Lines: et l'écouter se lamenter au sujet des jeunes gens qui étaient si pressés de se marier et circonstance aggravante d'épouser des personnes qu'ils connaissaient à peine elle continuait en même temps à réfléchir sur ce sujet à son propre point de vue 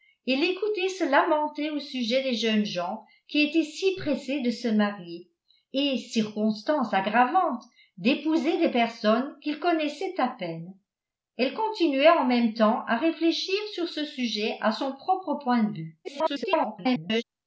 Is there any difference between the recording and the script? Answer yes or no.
yes